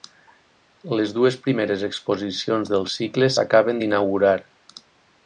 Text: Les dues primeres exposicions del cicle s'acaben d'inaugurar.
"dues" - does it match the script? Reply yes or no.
yes